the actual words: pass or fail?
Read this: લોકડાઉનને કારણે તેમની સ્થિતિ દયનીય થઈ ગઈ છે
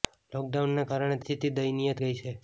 fail